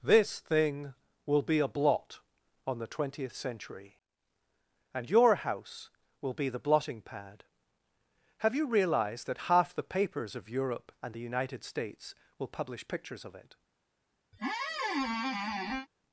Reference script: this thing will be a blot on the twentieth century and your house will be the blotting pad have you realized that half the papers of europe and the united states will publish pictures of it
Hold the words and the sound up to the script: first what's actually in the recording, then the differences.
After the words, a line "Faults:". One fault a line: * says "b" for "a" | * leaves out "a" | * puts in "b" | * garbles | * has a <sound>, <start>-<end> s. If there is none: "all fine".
this thing will be a blot on the twentieth century and your house will be the blotting pad have you realized that half the papers of europe and the united states will publish pictures of it
Faults:
* has a squeak, 14.3-15.9 s